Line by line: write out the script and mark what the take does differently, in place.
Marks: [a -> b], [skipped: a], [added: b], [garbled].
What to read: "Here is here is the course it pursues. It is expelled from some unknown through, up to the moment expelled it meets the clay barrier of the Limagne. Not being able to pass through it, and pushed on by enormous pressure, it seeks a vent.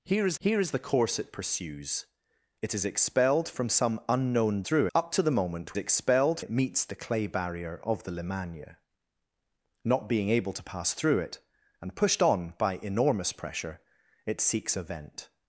"Here is here is the course it pursues. It is expelled from some unknown through, up to the moment expelled it meets the clay barrier of the Limagne. Not being able to pass through it, and pushed on by enormous pressure, it seeks a vent.